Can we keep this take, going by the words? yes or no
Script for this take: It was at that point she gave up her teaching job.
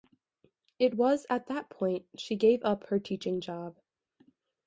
yes